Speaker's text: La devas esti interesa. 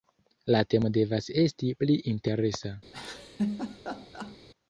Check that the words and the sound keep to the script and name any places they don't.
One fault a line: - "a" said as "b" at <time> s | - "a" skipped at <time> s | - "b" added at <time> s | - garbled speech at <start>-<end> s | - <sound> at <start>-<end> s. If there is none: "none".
- "temo" added at 0.7 s
- "pli" added at 1.8 s
- laugh at 2.9-4.4 s